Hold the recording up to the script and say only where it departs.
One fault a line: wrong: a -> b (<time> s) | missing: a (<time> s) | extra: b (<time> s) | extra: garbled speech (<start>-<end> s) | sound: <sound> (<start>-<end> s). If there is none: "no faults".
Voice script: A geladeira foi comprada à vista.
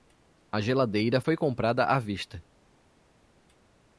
no faults